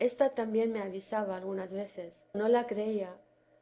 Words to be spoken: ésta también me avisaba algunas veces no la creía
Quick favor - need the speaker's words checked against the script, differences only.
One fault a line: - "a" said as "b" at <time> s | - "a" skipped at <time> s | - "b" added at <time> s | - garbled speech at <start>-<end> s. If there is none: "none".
none